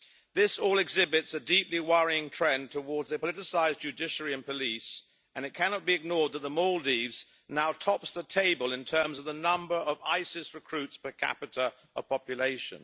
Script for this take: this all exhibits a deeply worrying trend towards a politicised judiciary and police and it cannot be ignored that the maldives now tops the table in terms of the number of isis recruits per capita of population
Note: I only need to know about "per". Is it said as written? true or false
true